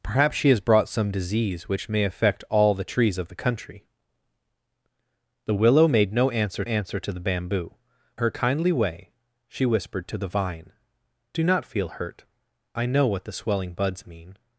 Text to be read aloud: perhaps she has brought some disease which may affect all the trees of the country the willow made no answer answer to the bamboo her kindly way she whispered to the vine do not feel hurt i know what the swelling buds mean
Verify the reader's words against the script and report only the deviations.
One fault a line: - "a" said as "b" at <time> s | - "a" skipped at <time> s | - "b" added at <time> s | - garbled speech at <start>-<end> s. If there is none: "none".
none